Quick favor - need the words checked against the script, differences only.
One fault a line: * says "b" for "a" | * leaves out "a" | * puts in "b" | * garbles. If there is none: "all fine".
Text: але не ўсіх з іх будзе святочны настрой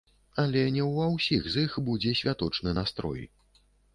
* puts in "ўва"